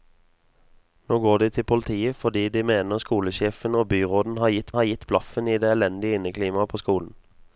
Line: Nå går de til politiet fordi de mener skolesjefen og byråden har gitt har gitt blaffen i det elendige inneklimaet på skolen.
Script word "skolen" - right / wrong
right